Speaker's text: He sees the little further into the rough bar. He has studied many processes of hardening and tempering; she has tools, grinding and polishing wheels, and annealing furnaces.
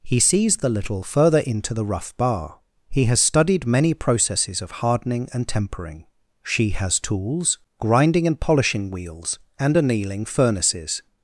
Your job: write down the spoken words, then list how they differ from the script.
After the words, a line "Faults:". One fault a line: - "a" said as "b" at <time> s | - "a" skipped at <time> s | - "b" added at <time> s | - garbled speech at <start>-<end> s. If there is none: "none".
He sees the little further into the rough bar. He has studied many processes of hardening and tempering; she has tools, grinding and polishing wheels, and annealing furnaces.
Faults:
none